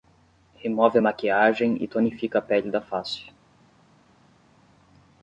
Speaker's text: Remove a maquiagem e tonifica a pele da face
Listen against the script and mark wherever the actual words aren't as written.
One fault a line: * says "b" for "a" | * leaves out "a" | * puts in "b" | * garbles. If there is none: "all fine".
all fine